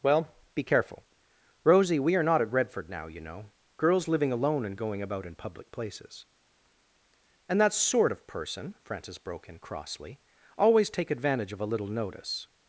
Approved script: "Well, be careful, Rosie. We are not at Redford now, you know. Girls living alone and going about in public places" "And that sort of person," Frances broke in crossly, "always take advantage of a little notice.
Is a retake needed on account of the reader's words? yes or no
no